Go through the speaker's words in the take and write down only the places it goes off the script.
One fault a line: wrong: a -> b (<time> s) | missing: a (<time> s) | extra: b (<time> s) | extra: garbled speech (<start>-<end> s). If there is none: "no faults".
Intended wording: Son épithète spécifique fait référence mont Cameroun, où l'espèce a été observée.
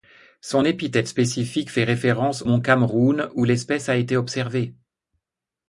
no faults